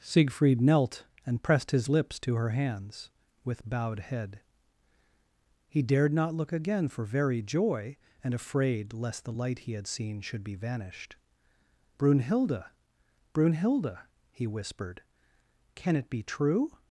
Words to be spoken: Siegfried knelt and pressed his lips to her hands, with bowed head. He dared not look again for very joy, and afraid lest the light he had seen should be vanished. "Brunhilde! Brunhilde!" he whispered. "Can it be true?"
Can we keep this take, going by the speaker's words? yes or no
yes